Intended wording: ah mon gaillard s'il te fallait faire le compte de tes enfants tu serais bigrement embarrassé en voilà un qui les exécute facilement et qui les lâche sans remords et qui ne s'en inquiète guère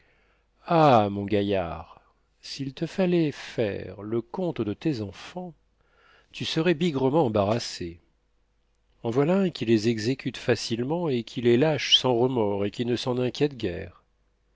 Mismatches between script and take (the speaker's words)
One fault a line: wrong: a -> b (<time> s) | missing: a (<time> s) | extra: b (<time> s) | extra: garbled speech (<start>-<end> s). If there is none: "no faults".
no faults